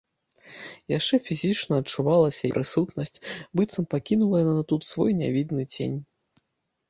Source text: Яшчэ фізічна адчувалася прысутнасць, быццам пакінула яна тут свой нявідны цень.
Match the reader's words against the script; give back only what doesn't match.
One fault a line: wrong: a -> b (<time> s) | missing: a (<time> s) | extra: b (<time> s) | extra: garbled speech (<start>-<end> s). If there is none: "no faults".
no faults